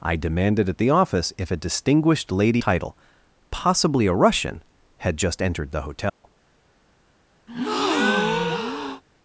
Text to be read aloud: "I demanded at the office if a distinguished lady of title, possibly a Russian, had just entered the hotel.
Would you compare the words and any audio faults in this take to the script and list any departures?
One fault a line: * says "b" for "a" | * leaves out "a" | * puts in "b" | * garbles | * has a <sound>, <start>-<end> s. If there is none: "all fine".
* leaves out "of"
* has a dropout, 6.1-6.2 s
* has a breath, 7.5-9.0 s